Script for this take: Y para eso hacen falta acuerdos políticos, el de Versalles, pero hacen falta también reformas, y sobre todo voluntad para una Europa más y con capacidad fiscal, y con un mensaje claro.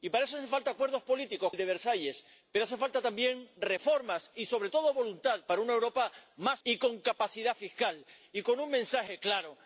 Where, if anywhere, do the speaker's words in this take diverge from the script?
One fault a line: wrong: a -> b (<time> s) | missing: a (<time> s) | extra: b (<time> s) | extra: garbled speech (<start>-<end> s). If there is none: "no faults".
no faults